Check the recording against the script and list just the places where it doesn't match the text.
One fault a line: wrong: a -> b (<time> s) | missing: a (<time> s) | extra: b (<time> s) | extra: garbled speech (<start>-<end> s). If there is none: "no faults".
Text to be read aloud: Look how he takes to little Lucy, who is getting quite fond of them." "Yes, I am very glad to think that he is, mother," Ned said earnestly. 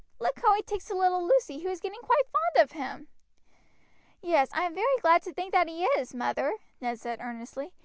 wrong: them -> him (2.7 s)